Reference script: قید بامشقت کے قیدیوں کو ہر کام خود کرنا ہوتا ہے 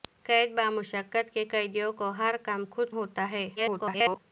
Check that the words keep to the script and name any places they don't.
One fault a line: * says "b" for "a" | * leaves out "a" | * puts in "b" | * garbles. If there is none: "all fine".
* leaves out "کرنا"
* garbles